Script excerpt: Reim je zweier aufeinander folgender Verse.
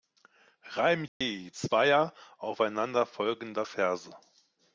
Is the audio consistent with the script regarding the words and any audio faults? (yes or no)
no